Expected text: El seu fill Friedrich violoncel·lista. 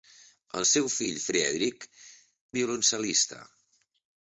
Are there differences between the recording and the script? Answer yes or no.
no